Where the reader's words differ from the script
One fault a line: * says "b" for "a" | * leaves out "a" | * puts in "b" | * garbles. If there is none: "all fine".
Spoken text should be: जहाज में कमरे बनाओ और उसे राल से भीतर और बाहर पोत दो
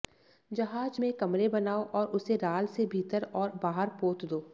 all fine